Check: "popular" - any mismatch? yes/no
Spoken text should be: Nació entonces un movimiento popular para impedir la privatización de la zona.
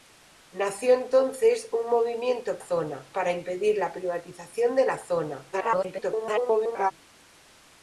yes